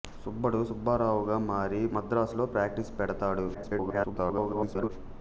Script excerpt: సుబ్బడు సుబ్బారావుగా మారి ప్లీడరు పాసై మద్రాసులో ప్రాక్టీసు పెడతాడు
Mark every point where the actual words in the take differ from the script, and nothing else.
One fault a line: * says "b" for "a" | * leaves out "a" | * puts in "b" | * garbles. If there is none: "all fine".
* leaves out "ప్లీడరు పాసై"
* garbles